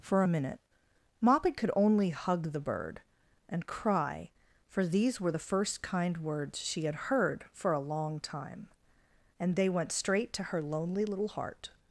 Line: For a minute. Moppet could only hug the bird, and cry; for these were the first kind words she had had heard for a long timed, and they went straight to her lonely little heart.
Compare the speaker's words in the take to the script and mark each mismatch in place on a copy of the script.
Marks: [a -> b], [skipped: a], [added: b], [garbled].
For a minute. Moppet could only hug the bird, and cry; for these were the first kind words she had [skipped: had] heard for a long [timed, -> time] and they went straight to her lonely little heart.